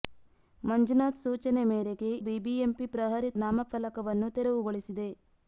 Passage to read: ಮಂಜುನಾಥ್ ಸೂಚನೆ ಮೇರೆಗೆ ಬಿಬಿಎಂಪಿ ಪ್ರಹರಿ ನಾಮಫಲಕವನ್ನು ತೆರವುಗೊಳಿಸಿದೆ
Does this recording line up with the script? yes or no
yes